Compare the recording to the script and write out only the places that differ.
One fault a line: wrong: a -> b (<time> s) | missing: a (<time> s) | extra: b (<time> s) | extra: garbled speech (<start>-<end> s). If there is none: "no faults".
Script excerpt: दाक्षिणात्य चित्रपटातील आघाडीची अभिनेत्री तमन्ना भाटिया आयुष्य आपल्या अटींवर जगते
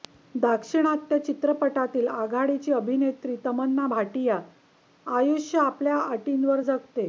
no faults